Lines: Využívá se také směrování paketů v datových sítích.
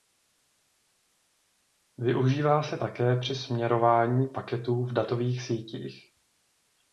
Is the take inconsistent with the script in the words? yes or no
yes